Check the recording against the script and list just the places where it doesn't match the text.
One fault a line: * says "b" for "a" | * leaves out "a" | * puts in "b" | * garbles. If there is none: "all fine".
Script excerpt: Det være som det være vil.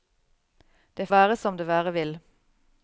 all fine